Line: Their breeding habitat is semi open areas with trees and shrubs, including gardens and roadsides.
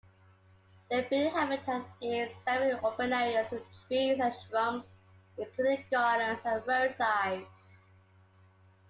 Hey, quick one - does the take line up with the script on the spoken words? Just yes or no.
yes